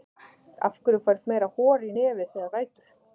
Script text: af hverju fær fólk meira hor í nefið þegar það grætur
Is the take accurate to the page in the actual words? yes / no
no